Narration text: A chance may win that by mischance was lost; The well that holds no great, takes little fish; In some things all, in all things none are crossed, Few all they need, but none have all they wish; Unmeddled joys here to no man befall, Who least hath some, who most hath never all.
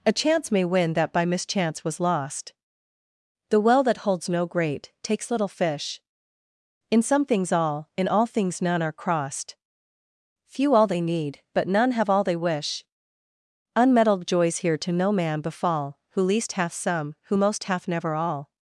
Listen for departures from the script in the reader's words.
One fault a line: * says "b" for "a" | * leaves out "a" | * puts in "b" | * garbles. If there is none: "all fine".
all fine